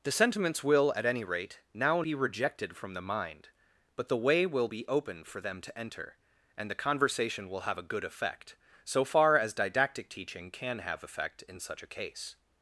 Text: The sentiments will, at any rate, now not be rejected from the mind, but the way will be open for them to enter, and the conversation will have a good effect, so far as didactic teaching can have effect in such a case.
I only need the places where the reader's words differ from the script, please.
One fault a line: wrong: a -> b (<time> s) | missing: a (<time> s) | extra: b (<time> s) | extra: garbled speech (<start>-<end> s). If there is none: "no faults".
missing: not (2.0 s)